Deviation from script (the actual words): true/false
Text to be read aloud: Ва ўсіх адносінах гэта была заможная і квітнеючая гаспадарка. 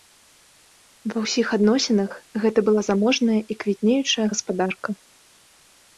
false